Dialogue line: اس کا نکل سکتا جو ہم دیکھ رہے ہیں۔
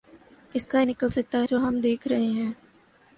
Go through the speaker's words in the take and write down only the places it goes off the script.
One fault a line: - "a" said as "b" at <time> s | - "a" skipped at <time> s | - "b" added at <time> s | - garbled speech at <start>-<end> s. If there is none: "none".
none